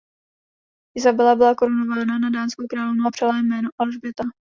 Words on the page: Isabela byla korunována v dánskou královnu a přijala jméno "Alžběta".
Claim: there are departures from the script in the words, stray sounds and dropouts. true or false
true